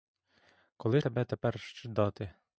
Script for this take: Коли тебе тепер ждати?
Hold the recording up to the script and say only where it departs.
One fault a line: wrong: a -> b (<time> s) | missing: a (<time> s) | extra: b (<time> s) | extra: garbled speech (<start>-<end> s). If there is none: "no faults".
no faults